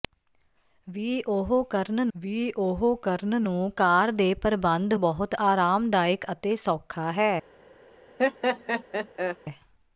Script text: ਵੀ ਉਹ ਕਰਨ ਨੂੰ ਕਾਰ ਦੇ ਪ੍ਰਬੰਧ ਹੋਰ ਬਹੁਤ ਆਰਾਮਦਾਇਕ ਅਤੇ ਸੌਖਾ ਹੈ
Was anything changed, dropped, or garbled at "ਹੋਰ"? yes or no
yes